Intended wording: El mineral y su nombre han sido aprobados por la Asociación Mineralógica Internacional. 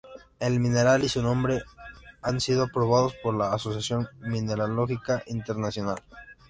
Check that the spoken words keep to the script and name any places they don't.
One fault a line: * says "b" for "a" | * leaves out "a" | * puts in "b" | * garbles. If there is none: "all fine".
all fine